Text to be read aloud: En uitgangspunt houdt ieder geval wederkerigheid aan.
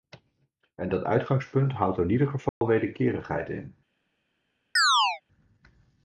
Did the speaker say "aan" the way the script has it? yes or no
no